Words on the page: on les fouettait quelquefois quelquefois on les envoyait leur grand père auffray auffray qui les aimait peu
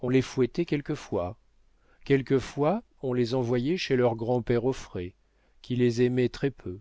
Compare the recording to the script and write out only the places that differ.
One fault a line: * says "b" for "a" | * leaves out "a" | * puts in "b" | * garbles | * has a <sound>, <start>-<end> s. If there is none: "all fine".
* puts in "chez"
* leaves out "auffray"
* puts in "très"